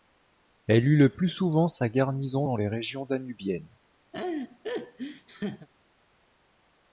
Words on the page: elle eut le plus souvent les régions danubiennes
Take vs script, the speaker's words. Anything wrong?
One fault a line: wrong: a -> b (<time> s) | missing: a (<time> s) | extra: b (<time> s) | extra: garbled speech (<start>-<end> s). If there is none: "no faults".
extra: sa garnison dans (1.7 s)